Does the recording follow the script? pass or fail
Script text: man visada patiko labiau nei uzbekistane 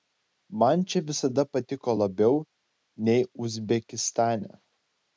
fail